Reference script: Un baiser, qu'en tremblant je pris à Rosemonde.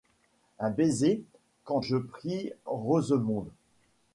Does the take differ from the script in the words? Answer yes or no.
yes